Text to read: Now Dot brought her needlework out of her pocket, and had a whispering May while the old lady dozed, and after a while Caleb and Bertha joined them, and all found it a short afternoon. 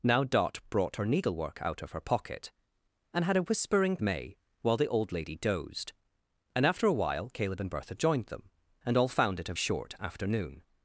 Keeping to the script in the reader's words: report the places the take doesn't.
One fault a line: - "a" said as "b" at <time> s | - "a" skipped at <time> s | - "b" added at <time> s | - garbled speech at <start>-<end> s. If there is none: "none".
none